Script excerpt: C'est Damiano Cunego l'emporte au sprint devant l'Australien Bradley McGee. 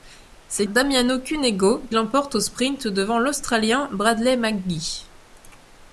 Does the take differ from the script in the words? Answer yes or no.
no